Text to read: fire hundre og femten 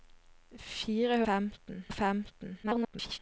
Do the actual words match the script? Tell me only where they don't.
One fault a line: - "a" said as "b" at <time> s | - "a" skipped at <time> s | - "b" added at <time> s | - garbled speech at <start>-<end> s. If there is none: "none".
- "hundre" said as "femten" at 1.3 s
- garbled speech at 2.6-3.2 s